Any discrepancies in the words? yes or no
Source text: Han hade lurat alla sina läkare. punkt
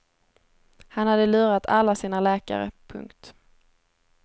no